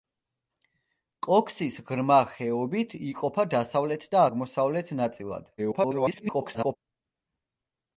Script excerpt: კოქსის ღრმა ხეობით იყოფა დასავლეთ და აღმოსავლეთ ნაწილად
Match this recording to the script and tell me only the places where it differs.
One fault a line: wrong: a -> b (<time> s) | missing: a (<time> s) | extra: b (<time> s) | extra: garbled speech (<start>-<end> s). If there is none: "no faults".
extra: garbled speech (5.6-6.8 s)